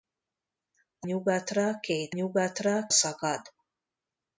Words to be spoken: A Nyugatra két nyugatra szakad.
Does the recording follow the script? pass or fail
pass